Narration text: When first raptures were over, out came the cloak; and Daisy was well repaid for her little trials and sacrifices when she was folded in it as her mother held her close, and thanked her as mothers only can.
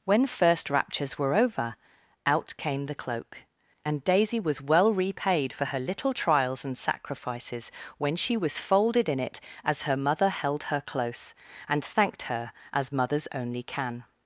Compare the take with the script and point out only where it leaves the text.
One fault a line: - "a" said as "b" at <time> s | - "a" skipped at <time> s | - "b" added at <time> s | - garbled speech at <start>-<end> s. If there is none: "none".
none